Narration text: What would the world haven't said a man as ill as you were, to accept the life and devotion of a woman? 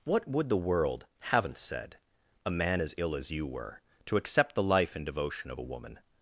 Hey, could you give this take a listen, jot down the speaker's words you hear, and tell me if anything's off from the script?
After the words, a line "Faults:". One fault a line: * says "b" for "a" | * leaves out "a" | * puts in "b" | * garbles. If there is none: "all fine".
What would the world haven't said a man as ill as you were, to accept the life and devotion of a woman?
Faults:
all fine